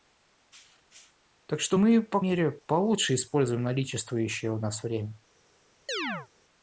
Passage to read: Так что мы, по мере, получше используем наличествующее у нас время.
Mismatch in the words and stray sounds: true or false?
true